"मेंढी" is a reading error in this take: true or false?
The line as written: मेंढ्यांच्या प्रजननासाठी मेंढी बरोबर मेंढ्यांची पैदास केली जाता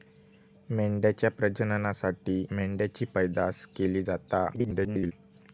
true